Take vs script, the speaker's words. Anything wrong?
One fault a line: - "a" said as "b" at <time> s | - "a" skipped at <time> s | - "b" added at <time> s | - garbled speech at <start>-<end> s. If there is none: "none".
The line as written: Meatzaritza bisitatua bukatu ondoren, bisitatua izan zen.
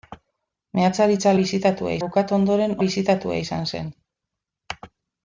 none